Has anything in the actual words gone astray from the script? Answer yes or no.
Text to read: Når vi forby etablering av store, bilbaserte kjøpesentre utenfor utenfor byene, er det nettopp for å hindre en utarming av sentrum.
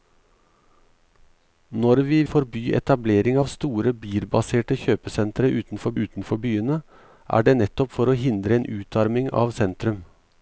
no